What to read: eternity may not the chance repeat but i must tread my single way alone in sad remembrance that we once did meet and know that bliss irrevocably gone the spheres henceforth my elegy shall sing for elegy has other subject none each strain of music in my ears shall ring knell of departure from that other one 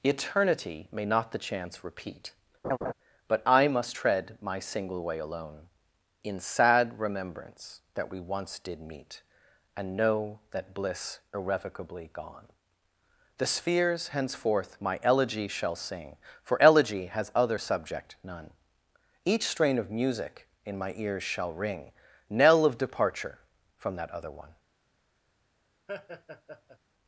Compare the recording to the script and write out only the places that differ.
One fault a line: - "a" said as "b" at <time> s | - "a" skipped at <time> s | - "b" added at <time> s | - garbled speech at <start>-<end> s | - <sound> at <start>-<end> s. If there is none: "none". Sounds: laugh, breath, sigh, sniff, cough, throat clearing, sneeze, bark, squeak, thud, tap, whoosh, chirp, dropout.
- laugh at 2.6-2.9 s
- laugh at 25.9-26.8 s